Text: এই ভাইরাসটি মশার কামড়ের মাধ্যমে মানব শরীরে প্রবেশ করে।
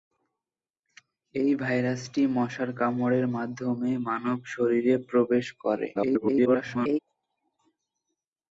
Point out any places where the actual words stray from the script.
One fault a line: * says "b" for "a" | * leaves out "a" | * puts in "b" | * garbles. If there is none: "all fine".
* garbles